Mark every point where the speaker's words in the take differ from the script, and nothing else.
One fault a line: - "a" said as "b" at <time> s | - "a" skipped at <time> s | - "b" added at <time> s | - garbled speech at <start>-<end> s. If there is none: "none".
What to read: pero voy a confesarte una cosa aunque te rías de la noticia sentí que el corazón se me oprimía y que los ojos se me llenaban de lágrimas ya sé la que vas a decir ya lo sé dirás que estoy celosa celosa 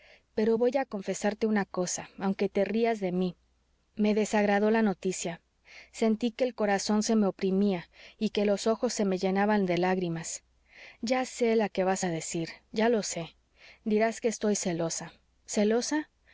- "mí me desagradó" added at 3.1 s